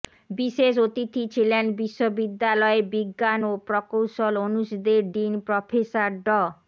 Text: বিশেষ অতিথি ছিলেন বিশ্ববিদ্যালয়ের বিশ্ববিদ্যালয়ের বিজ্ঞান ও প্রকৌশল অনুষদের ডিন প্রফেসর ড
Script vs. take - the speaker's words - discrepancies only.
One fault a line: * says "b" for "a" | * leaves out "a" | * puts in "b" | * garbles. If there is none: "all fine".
* leaves out "বিশ্ববিদ্যালয়ের"